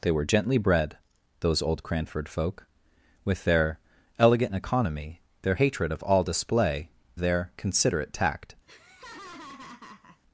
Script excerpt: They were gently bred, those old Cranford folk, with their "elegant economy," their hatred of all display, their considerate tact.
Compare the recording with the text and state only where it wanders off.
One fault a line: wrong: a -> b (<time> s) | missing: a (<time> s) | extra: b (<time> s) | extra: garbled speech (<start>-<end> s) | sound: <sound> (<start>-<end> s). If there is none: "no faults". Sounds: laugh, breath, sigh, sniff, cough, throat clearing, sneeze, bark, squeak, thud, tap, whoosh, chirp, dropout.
sound: laugh (8.7-10.2 s)